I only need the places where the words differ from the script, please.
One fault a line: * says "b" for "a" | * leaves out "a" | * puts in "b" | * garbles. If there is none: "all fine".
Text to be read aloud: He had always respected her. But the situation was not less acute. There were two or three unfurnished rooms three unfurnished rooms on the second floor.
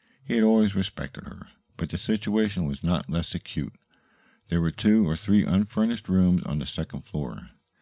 * leaves out "three unfurnished rooms"